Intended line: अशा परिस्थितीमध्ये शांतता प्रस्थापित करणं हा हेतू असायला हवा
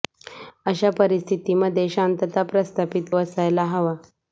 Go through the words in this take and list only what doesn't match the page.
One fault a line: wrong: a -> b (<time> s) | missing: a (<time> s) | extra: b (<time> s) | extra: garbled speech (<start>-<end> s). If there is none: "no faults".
missing: करणं हा हेतू (3.1 s)